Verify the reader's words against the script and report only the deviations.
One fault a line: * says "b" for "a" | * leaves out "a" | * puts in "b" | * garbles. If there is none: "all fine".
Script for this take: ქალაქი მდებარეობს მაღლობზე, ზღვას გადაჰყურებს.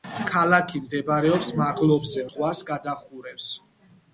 all fine